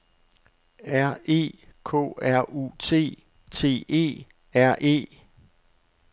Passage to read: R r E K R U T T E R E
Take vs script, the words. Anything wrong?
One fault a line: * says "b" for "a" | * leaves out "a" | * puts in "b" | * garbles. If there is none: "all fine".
* leaves out "r"